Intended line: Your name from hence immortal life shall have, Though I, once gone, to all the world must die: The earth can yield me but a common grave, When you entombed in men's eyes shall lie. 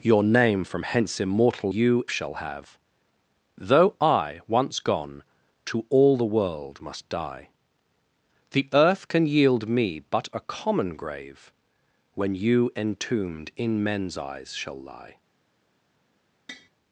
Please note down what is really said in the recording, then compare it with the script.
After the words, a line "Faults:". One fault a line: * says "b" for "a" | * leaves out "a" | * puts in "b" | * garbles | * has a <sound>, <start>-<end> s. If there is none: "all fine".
Your name from hence immortal you shall have, Though I, once gone, to all the world must die: The earth can yield me but a common grave, When you entombed in men's eyes shall lie.
Faults:
* says "you" for "life"
* has a tap, 16.5-16.7 s